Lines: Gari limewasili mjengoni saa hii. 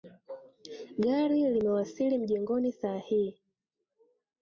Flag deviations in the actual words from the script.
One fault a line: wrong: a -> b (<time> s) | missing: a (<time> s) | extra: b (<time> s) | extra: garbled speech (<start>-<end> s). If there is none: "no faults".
no faults